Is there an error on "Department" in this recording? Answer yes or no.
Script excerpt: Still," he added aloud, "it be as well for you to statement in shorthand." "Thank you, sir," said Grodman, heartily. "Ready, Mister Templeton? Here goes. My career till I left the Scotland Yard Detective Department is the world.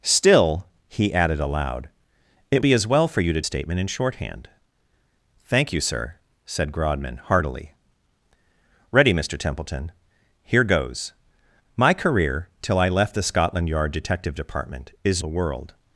no